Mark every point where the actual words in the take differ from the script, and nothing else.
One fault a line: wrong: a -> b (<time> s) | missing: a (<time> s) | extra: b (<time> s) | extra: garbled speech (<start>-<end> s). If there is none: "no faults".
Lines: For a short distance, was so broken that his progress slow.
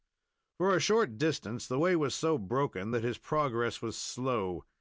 extra: the way (1.7 s)
extra: was (3.8 s)